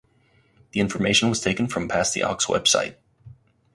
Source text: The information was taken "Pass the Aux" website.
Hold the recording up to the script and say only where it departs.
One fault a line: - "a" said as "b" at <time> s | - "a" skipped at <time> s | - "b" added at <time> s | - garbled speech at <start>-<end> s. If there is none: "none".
- "from" added at 1.7 s